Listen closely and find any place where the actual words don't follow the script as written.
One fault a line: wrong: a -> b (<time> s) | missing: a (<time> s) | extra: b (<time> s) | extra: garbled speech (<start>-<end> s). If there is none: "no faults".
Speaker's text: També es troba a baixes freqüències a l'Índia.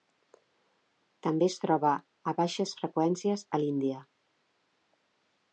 no faults